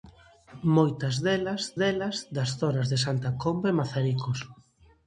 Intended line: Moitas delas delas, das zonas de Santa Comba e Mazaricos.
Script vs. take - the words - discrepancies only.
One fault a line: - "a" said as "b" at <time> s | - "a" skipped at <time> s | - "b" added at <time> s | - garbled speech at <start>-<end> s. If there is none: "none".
none